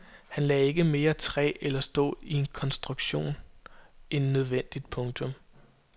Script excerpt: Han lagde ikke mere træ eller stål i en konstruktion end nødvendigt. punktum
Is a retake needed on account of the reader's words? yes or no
no